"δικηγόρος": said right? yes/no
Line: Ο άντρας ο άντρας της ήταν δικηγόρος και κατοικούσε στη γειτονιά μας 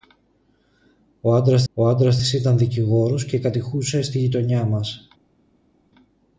yes